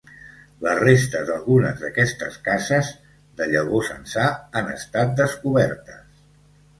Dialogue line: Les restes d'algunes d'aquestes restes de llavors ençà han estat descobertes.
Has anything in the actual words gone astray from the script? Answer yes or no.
yes